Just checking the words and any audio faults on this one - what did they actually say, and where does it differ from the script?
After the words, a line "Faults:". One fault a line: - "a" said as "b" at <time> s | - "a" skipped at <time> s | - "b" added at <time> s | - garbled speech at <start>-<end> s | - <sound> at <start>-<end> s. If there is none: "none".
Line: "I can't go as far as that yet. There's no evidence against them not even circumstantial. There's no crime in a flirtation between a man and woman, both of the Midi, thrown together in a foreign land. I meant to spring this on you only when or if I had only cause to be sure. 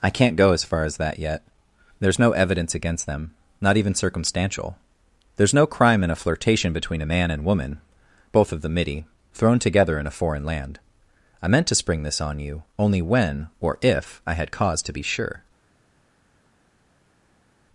"I can't go as far as that yet. There's no evidence against them not even circumstantial. There's no crime in a flirtation between a man and woman, both of the Midi, thrown together in a foreign land. I meant to spring this on you only when or if I had cause to be sure.
Faults:
- "only" skipped at 14.5 s